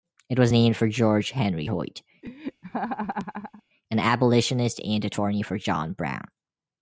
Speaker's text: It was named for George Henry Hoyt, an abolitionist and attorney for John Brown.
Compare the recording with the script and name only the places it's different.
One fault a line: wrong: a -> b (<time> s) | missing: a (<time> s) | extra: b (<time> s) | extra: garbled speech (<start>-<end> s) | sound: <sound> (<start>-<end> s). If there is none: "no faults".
sound: laugh (2.2-3.6 s)